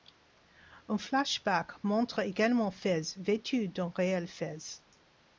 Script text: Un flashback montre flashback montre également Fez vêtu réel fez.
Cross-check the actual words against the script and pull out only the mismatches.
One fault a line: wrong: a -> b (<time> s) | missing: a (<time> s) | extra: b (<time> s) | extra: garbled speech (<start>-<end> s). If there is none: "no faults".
missing: flashback montre (2.2 s)
extra: d'un (3.7 s)